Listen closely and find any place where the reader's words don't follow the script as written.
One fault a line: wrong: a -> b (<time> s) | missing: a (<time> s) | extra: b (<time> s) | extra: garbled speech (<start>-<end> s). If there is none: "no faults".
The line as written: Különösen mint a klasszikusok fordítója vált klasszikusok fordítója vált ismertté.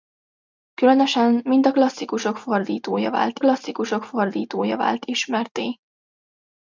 no faults